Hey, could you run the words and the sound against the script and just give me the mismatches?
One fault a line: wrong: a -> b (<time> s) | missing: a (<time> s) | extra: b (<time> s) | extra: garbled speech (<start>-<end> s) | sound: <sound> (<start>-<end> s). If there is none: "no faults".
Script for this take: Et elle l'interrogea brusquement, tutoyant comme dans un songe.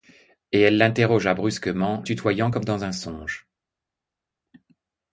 no faults